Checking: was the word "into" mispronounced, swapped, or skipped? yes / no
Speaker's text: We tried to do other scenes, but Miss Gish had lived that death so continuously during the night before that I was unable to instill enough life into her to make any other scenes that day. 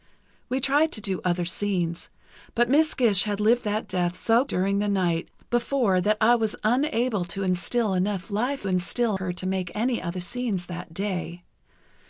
yes